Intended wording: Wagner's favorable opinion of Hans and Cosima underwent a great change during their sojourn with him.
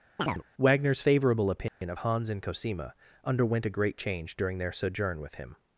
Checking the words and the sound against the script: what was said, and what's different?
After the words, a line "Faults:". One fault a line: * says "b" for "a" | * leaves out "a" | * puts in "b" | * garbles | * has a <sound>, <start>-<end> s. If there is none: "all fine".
Wagner's favorable opinion of Hans and Cosima underwent a great change during their sojourn with him.
Faults:
* has a chirp, 0.2-0.4 s
* has a dropout, 1.7-1.8 s